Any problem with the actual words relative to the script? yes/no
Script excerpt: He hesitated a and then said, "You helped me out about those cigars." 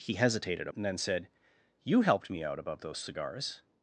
no